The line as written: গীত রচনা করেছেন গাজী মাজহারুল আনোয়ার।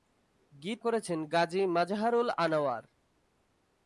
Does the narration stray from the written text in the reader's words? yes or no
yes